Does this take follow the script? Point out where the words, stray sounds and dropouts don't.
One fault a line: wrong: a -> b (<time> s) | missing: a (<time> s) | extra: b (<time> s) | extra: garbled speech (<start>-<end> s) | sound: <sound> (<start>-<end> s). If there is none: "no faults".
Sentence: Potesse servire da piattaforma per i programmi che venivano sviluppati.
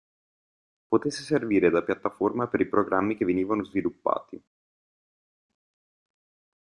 no faults